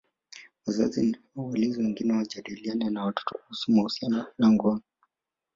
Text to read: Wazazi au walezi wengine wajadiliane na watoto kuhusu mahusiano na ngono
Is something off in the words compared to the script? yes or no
no